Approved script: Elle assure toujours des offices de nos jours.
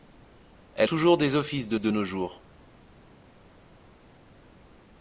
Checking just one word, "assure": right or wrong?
wrong